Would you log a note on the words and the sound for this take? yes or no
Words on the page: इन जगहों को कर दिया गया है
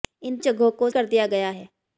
no